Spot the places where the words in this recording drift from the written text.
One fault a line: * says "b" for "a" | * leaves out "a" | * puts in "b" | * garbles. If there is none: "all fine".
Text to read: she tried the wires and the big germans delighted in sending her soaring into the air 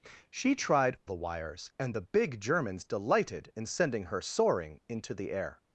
all fine